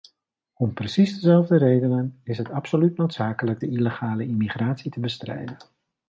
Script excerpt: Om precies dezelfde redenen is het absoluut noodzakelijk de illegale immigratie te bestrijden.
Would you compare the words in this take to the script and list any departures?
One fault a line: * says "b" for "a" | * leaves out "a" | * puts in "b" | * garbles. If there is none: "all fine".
all fine